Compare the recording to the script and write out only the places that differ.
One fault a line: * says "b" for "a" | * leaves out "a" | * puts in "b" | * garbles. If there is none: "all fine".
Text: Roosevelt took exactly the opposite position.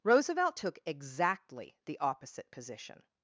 all fine